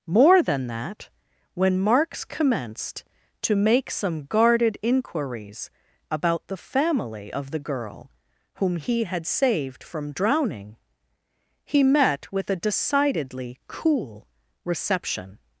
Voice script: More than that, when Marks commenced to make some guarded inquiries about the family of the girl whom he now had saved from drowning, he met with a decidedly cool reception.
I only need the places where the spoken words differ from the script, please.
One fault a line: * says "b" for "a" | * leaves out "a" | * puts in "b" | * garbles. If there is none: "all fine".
* leaves out "now"